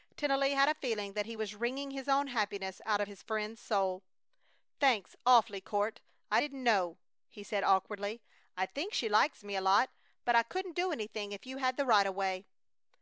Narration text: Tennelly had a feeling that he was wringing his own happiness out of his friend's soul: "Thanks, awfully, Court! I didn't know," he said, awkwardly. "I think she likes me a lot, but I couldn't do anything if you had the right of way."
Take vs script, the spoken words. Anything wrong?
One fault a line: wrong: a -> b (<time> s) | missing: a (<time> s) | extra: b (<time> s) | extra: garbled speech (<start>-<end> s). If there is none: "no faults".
no faults